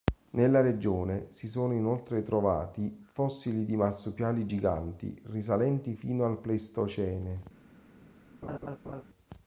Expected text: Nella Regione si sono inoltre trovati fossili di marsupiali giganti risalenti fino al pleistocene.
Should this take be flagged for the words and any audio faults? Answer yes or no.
yes